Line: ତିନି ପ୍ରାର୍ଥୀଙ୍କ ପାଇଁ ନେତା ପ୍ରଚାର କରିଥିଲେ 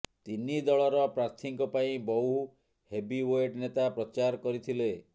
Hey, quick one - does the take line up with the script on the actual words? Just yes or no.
no